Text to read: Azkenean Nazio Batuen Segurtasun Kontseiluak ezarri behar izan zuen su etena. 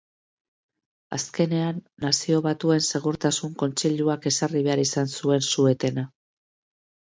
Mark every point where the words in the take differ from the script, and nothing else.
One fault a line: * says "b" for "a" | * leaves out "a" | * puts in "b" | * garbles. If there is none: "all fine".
all fine